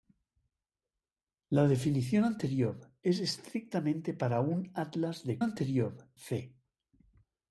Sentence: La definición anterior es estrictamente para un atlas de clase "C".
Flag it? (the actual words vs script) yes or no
yes